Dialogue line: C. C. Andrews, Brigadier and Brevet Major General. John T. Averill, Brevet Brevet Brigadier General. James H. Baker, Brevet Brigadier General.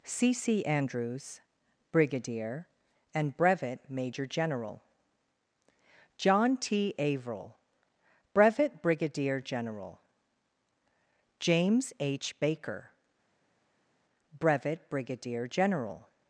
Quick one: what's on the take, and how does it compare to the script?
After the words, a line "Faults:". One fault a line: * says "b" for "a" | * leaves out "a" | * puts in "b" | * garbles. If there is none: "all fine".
C. C. Andrews, Brigadier and Brevet Major General. John T. Averill, Brevet Brigadier General. James H. Baker, Brevet Brigadier General.
Faults:
* leaves out "Brevet"